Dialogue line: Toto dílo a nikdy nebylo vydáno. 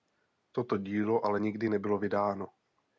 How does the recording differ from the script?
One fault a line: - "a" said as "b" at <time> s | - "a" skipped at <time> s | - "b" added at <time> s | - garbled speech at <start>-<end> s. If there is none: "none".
- "a" said as "ale" at 1.2 s